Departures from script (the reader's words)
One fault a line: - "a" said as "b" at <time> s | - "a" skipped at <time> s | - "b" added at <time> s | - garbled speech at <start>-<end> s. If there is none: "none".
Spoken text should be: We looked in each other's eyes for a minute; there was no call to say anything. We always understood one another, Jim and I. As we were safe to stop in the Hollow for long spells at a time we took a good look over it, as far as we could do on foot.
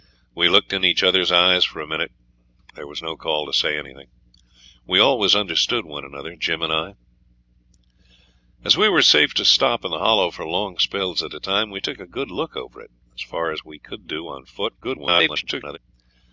- garbled speech at 14.8-15.8 s